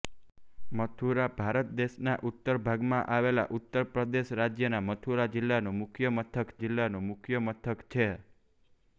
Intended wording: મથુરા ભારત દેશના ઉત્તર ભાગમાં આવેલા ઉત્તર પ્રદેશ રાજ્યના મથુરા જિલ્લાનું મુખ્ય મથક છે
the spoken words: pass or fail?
fail